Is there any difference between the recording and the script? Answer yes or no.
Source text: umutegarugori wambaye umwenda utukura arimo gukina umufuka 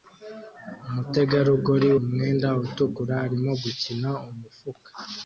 yes